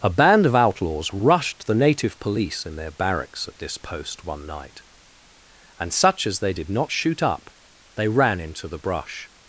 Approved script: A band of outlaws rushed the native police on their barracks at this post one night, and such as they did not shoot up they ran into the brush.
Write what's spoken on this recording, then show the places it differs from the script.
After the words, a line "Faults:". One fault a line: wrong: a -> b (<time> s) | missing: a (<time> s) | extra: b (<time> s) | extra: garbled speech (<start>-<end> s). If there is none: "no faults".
A band of outlaws rushed the native police in their barracks at this post one night, and such as they did not shoot up they ran into the brush.
Faults:
wrong: on -> in (2.6 s)